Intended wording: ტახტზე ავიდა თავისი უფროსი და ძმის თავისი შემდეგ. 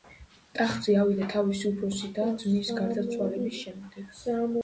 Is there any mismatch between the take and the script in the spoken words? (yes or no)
yes